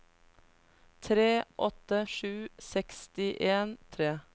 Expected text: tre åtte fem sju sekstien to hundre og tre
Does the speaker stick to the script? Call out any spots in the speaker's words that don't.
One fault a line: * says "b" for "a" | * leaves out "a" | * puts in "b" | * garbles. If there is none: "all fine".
* leaves out "fem"
* leaves out "to hundre"